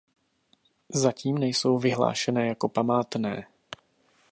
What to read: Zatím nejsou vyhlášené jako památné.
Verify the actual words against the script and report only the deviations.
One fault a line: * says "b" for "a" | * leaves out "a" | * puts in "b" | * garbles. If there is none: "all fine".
all fine